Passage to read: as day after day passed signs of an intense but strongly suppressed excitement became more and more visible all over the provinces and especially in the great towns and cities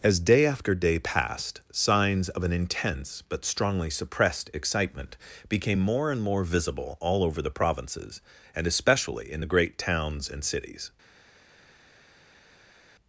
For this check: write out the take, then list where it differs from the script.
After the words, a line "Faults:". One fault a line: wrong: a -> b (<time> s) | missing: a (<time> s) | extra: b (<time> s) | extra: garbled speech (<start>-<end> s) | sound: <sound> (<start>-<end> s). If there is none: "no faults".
as day after day passed signs of an intense but strongly suppressed excitement became more and more visible all over the provinces and especially in the great towns and cities
Faults:
no faults